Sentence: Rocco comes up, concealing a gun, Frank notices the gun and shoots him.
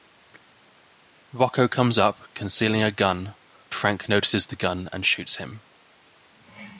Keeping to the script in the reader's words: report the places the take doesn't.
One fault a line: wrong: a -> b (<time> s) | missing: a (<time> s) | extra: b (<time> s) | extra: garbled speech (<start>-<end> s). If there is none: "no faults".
no faults